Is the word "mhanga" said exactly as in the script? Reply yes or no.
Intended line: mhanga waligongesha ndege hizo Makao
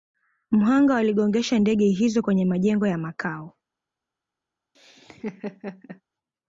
yes